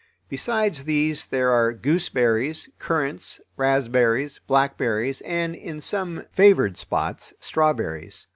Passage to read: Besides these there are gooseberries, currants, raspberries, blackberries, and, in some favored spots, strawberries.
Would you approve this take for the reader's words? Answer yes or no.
yes